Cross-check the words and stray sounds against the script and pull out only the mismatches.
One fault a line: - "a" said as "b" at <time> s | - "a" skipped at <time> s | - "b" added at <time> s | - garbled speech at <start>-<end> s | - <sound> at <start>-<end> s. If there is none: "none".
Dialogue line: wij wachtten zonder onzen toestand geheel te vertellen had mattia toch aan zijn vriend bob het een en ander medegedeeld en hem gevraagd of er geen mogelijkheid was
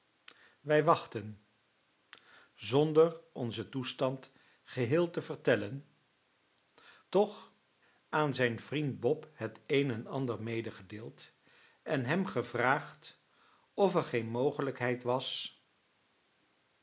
- "had mattia" skipped at 5.9 s